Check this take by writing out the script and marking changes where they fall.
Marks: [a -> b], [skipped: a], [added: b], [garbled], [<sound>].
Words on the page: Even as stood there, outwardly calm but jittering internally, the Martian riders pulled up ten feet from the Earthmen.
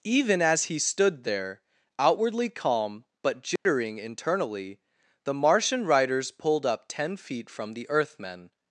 Even as [added: he] stood there, outwardly calm but jittering [dropout] internally, the Martian riders pulled up ten feet from the Earthmen.